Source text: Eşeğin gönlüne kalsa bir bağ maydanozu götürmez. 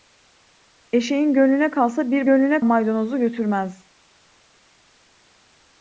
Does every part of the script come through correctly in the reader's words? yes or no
no